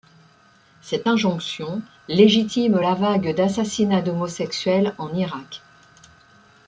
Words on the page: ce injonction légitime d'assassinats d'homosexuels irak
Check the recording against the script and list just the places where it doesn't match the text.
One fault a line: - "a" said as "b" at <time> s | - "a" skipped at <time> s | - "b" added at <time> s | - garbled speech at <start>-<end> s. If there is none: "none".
- "ce" said as "cette" at 0.8 s
- "la vague" added at 2.8 s
- "en" added at 5.0 s